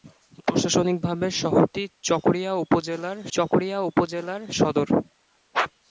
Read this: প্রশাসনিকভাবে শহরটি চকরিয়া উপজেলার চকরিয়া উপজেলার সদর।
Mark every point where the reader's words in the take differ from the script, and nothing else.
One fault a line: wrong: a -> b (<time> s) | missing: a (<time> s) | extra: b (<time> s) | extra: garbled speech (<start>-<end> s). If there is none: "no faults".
no faults